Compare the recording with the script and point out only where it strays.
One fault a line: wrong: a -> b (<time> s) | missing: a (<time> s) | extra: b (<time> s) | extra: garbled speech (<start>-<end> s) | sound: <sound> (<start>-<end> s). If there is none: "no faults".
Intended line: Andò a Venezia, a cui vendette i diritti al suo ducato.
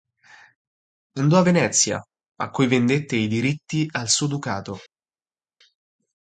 no faults